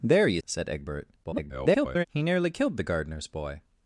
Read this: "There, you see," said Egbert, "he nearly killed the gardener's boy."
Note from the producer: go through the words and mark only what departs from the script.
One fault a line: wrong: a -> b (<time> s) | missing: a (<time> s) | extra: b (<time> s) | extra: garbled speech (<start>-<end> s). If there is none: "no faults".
missing: see (0.4 s)
extra: garbled speech (1.2-2.1 s)